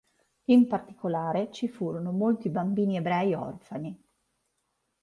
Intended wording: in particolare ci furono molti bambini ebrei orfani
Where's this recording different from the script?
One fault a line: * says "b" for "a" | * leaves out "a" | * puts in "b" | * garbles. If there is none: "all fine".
all fine